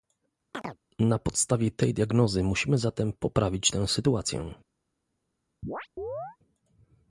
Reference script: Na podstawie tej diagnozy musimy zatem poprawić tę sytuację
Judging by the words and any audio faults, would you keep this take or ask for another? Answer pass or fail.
fail